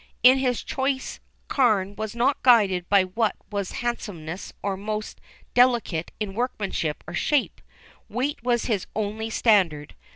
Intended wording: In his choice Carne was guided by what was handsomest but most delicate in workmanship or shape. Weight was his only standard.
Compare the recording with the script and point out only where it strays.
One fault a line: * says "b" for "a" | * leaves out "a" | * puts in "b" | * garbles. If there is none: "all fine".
* puts in "not"
* says "or" for "but"